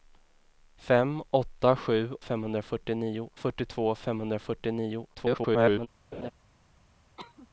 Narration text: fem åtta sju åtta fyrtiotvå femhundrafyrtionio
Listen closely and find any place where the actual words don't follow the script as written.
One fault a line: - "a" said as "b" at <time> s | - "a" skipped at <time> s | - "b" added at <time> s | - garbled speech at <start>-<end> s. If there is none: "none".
- "åtta" said as "femhundrafyrtionio" at 2.2 s
- garbled speech at 5.1-5.9 s